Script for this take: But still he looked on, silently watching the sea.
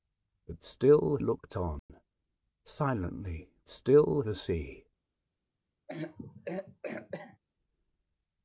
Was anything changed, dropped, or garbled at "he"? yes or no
yes